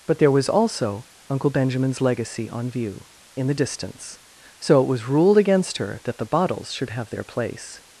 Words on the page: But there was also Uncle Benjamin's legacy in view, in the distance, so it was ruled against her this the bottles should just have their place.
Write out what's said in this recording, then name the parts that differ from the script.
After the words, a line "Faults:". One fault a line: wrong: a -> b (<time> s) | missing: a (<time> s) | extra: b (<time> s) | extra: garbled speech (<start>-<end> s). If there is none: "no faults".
But there was also Uncle Benjamin's legacy on view, in the distance, so it was ruled against her that the bottles should have their place.
Faults:
wrong: in -> on (2.5 s)
wrong: this -> that (6.0 s)
missing: just (6.9 s)